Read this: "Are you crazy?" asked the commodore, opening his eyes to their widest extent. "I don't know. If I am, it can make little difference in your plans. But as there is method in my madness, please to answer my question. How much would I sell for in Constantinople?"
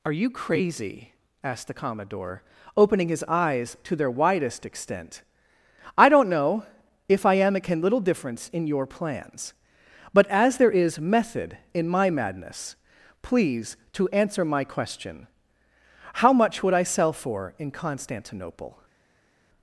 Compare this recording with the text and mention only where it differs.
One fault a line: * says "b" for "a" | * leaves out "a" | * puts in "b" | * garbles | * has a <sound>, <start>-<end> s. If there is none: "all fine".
* leaves out "make"